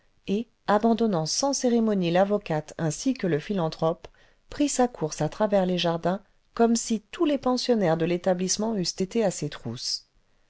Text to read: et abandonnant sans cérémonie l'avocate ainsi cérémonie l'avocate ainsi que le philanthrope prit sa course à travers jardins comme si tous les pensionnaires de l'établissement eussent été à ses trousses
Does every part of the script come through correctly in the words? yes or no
no